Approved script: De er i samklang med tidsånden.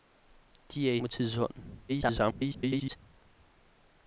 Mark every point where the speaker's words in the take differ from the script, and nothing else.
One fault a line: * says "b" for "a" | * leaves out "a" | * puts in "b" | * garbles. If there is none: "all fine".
* leaves out "samklang"
* garbles